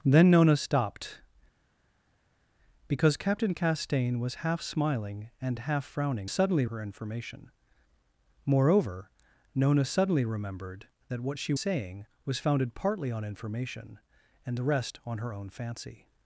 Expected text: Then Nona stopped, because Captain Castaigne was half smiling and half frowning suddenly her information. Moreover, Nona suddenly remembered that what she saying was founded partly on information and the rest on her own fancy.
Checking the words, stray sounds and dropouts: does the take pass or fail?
pass